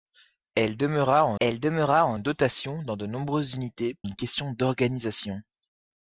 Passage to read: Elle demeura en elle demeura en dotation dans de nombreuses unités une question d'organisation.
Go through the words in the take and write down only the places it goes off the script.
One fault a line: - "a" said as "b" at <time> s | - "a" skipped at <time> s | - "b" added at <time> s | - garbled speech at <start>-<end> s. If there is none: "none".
none